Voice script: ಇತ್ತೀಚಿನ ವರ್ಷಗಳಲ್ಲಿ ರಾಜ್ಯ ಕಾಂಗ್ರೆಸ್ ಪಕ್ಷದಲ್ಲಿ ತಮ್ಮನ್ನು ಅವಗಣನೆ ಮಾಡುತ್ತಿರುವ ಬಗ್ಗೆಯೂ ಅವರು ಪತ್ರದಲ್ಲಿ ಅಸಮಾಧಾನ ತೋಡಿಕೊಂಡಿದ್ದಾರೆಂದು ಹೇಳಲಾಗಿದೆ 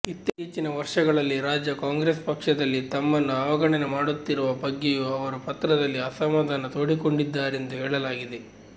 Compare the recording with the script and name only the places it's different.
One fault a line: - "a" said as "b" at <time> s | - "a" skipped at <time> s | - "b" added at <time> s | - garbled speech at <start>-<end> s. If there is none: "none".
none